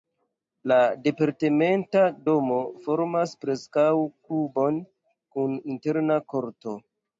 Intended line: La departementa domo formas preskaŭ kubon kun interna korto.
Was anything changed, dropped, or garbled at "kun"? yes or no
no